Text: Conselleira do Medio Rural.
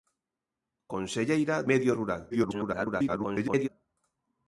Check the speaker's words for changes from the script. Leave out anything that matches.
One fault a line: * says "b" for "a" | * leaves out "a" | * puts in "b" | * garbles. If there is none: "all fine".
* leaves out "do"
* garbles